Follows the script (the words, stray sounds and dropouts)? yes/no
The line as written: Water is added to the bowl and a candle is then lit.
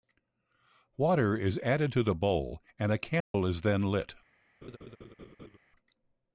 no